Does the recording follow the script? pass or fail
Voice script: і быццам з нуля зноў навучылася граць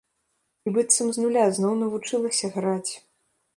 pass